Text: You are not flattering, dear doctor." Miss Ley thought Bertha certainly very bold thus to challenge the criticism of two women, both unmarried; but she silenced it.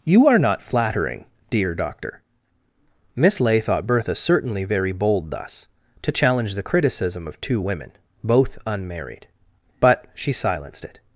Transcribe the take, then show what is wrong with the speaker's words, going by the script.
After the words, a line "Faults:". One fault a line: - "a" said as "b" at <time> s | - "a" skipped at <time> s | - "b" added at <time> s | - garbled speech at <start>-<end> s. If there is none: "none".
You are not flattering, dear doctor." Miss Ley thought Bertha certainly very bold thus to challenge the criticism of two women, both unmarried; but she silenced it.
Faults:
none